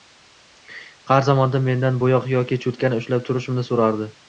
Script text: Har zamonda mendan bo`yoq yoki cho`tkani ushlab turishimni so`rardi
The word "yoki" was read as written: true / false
true